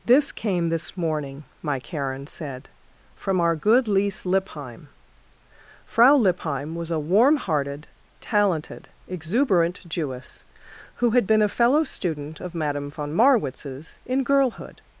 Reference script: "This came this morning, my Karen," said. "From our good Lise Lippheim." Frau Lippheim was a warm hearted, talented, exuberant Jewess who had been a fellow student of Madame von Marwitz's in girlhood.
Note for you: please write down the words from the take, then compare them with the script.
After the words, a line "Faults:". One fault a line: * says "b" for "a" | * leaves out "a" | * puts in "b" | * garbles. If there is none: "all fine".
"This came this morning, my Karen," said. "From our good Lise Lippheim." Frau Lippheim was a warm hearted, talented, exuberant Jewess who had been a fellow student of Madame von Marwitz's in girlhood.
Faults:
all fine